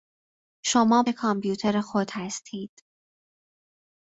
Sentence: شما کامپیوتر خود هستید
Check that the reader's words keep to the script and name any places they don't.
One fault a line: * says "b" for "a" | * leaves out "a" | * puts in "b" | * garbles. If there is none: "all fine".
all fine